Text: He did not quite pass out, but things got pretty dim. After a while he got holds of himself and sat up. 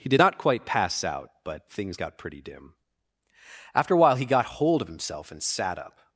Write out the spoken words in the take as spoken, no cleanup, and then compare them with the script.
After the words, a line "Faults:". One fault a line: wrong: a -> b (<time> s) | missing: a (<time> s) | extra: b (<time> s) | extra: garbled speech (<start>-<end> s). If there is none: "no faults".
He did not quite pass out, but things got pretty dim. After a while he got hold of himself and sat up.
Faults:
wrong: holds -> hold (4.6 s)